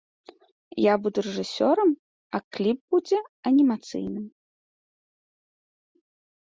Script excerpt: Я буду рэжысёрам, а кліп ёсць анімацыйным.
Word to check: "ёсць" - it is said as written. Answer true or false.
false